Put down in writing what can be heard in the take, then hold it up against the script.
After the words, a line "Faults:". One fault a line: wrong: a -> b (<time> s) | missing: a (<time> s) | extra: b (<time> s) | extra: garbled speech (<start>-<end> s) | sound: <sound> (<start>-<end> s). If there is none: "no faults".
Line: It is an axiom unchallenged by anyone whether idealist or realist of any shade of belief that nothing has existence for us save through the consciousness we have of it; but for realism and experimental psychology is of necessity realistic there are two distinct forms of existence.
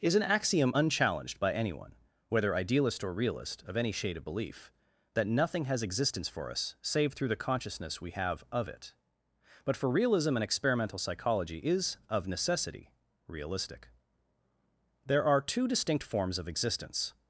is an axiom unchallenged by anyone whether idealist or realist of any shade of belief that nothing has existence for us save through the consciousness we have of it; but for realism and experimental psychology is of necessity realistic there are two distinct forms of existence.
Faults:
missing: It (0.0 s)